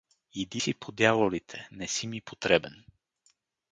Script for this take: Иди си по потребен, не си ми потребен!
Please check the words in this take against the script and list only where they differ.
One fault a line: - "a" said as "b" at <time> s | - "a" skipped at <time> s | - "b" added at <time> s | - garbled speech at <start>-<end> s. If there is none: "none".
- "потребен" said as "дяволите" at 0.9 s